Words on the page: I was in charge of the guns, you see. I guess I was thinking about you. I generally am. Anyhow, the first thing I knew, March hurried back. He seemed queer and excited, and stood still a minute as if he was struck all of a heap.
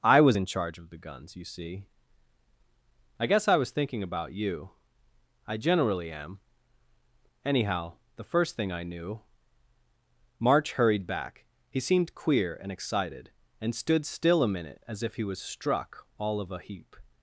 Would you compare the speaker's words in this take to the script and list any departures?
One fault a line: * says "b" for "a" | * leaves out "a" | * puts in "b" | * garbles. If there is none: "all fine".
all fine